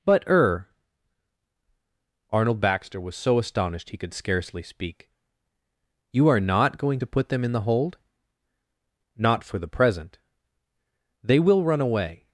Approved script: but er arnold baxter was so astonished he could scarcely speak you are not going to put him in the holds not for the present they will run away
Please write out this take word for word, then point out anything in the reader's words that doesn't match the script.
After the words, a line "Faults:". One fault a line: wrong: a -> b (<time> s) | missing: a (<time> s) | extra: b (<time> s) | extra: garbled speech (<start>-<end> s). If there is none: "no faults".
but er arnold baxter was so astonished he could scarcely speak you are not going to put them in the hold not for the present they will run away
Faults:
wrong: him -> them (7.3 s)
wrong: holds -> hold (7.6 s)